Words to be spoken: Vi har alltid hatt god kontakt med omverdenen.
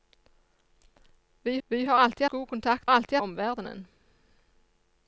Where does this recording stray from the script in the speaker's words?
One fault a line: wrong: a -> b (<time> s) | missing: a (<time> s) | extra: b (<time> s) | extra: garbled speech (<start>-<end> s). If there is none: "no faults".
extra: vi (1.7 s)
missing: hatt (2.2 s)
wrong: med -> alltid (2.9 s)